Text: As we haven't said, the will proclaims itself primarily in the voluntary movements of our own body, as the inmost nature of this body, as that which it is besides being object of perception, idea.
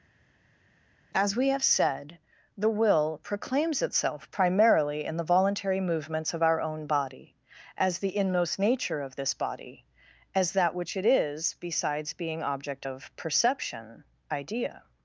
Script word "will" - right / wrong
right